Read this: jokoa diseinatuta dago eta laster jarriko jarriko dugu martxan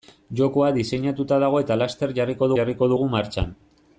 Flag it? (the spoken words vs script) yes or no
no